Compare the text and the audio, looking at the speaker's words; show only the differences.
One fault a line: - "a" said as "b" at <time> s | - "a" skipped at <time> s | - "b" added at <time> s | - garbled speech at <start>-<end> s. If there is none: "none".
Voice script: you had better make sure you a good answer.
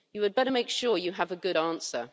- "have" added at 1.1 s